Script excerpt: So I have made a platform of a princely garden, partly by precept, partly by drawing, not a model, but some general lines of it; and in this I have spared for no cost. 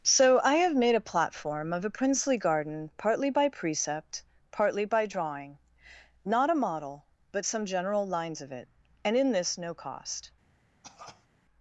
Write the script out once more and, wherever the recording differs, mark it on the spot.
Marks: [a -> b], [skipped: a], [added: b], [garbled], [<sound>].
So I have made a platform of a princely garden, partly by precept, partly by drawing, not a model, but some general lines of it; and in this [skipped: I have spared for] no cost. [cough]